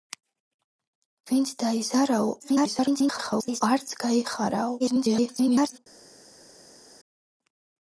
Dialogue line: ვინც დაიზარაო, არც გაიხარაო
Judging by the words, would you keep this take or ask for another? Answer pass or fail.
fail